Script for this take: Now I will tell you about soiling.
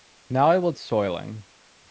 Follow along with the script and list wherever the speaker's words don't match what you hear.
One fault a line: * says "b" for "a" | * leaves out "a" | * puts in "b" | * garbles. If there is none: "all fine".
* leaves out "tell you about"